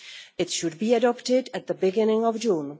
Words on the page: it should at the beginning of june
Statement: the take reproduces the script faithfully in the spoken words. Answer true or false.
false